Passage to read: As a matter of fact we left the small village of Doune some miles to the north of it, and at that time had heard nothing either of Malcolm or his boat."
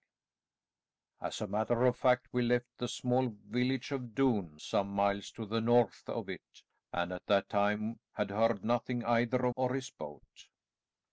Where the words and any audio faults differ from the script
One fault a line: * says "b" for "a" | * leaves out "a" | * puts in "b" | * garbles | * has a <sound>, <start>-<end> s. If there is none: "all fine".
* leaves out "Malcolm"